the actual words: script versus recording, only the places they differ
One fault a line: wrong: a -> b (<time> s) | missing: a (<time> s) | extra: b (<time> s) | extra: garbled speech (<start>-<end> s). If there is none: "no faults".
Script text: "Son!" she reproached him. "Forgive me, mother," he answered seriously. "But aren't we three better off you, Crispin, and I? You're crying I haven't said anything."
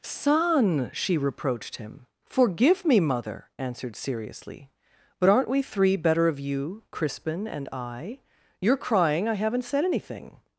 missing: he (3.5 s)
wrong: off -> of (6.3 s)